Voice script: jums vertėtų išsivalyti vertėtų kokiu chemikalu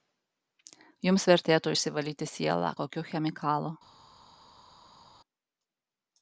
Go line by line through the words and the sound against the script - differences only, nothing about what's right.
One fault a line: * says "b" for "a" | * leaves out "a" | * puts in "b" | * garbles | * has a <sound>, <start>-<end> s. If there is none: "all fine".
* says "sielą" for "vertėtų"